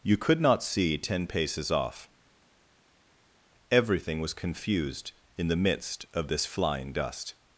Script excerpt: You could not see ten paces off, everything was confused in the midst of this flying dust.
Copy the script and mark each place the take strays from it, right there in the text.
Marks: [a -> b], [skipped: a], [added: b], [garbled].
You could not see ten paces off, everything was confused in the midst of this flying dust.